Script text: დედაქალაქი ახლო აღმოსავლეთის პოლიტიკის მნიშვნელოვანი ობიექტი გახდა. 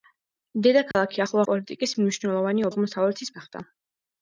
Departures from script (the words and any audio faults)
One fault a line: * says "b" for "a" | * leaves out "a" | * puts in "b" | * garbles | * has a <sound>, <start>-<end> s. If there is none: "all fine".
* has a dropout, 0.9-0.9 s
* leaves out "აღმოსავლეთის"
* says "აღმოსავლეთის" for "ობიექტი"